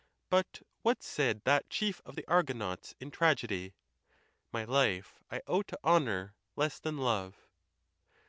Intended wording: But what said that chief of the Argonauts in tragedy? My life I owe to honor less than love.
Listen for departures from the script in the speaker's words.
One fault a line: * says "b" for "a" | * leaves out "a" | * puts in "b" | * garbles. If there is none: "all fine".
all fine